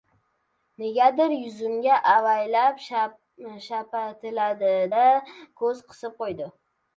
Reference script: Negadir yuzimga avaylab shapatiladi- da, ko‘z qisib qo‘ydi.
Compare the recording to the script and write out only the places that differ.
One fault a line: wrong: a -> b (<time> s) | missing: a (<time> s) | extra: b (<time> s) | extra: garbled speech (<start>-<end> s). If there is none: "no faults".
no faults